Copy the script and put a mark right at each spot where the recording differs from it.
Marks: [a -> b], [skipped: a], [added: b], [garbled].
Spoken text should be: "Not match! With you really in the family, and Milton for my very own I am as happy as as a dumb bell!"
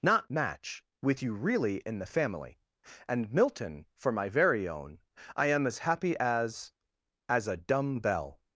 "Not match! With you really in the family, and Milton for my very own I am as happy as as a dumb bell!"